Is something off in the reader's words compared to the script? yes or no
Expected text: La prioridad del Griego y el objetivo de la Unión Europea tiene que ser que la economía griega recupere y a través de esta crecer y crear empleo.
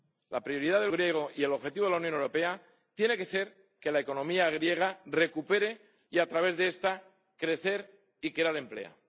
no